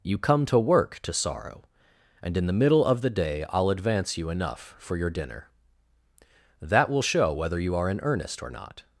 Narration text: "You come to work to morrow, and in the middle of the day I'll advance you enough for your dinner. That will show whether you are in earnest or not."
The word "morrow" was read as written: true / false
false